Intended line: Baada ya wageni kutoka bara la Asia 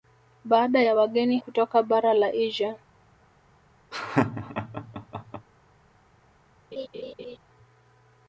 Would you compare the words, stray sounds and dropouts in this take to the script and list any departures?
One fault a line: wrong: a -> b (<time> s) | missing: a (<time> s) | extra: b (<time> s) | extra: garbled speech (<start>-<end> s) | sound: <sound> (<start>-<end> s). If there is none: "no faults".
sound: laugh (3.9-5.5 s)
sound: laugh (6.7-7.4 s)